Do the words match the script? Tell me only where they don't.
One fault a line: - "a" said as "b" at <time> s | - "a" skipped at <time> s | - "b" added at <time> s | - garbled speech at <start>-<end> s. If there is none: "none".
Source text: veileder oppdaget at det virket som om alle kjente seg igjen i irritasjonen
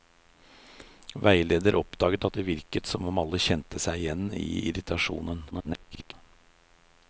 - garbled speech at 5.5-6.1 s